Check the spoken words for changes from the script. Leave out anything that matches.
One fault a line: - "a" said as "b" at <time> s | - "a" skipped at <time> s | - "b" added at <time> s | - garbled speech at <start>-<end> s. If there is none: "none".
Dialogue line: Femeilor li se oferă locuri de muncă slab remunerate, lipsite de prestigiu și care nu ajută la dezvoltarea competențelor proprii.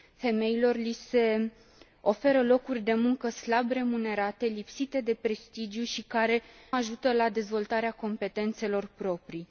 - "nu" skipped at 6.4 s